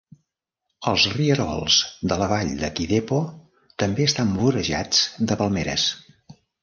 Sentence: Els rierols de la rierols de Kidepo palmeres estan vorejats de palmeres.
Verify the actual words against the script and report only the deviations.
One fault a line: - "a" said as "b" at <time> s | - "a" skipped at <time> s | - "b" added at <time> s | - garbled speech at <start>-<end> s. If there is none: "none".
- "rierols" said as "vall" at 2.3 s
- "palmeres" said as "també" at 3.8 s